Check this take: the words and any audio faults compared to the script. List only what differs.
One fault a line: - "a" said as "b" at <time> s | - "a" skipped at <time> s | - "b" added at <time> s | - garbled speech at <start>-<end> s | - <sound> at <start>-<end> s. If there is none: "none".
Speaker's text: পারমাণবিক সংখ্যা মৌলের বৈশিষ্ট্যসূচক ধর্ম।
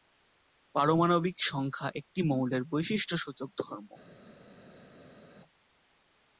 - "একটি" added at 1.9 s